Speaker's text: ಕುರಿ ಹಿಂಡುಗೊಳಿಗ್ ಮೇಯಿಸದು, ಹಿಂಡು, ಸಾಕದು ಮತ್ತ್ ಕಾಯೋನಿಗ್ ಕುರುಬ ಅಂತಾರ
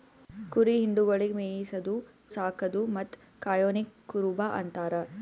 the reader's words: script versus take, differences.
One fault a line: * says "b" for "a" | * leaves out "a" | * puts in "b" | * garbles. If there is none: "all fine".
* leaves out "ಹಿಂಡು"